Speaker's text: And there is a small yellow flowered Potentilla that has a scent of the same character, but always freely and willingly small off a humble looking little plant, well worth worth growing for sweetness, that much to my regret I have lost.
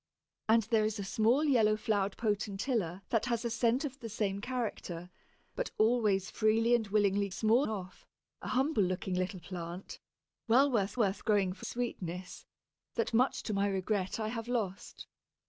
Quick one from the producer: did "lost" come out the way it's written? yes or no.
yes